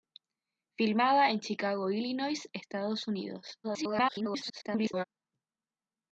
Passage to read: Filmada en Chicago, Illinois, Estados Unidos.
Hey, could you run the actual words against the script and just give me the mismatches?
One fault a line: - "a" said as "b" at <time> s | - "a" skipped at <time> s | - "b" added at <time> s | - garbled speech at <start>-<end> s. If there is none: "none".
- garbled speech at 3.6-5.0 s